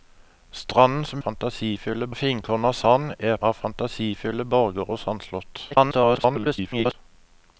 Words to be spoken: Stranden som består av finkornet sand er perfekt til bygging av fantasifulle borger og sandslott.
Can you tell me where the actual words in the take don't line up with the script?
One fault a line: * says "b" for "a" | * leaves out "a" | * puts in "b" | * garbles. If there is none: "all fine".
* says "fantasifulle" for "består"
* leaves out "perfekt til bygging"
* garbles